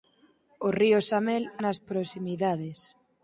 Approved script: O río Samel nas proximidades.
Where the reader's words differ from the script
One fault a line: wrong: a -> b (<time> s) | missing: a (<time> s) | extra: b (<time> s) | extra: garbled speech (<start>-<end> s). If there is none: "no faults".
no faults